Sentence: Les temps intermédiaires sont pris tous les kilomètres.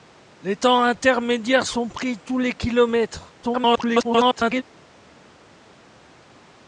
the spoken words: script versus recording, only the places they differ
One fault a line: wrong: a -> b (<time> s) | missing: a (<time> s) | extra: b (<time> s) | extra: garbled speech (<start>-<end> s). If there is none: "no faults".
extra: garbled speech (3.4-4.6 s)